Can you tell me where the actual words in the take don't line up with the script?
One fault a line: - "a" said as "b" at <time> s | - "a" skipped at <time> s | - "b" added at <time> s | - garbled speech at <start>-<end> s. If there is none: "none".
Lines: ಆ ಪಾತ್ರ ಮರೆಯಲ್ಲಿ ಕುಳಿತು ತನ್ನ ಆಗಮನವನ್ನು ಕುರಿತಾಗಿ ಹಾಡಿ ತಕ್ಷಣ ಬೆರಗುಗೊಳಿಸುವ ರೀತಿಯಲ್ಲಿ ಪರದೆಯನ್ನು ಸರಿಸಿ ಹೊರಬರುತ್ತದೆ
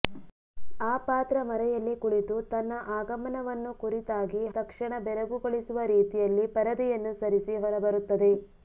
- "ಹಾಡಿ" skipped at 4.4 s